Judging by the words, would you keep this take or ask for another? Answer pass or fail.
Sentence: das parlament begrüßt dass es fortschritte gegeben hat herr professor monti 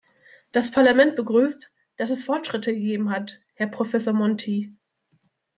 pass